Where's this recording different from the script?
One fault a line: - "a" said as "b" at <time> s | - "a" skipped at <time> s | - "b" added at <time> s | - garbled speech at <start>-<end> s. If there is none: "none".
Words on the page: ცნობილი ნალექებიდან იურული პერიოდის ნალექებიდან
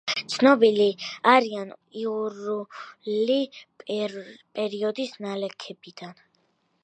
- "ნალექებიდან" said as "არიან" at 1.3 s